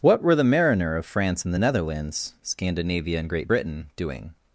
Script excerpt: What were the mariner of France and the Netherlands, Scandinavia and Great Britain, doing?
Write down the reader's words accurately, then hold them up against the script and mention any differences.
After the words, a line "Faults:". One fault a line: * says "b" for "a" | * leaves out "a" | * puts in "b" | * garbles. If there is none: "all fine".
What were the mariner of France and the Netherlands, Scandinavia and Great Britain, doing?
Faults:
all fine